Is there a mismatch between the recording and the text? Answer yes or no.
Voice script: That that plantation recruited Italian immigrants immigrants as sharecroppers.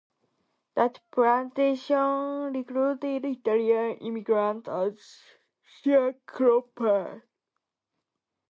yes